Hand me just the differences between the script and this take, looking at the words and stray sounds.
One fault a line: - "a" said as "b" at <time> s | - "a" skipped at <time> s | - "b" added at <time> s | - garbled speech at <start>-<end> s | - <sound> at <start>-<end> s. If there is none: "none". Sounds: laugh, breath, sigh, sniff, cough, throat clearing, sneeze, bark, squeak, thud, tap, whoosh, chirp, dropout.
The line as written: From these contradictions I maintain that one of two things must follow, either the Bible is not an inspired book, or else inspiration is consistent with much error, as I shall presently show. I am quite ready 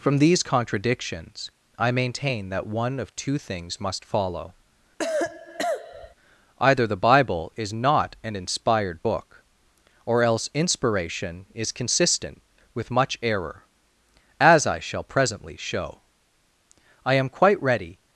- cough at 5.0-6.2 s